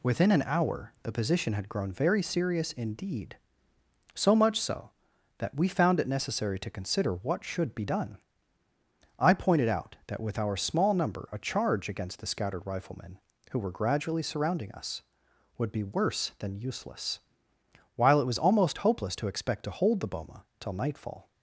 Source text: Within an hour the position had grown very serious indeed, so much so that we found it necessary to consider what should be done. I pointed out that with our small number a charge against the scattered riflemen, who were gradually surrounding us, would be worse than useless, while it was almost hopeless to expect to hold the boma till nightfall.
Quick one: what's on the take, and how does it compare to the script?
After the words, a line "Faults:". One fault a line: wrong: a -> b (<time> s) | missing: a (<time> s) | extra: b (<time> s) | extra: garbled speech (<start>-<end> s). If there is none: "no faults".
Within an hour the position had grown very serious indeed, so much so that we found it necessary to consider what should be done. I pointed out that with our small number a charge against the scattered riflemen, who were gradually surrounding us, would be worse than useless, while it was almost hopeless to expect to hold the boma till nightfall.
Faults:
no faults